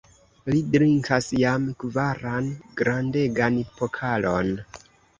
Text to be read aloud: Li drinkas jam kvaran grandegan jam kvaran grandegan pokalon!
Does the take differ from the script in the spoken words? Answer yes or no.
yes